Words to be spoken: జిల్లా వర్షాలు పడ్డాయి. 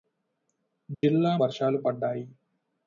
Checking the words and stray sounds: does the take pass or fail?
fail